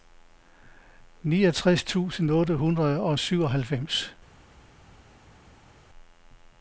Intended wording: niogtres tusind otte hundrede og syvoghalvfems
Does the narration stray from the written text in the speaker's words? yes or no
no